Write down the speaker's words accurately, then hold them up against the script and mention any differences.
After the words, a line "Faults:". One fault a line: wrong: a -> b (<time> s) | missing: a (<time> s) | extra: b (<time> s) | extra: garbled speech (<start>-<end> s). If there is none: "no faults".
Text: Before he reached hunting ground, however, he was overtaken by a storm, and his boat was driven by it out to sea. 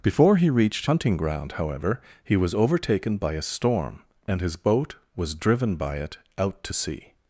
Before he reached hunting ground, however, he was overtaken by a storm, and his boat was driven by it out to sea.
Faults:
no faults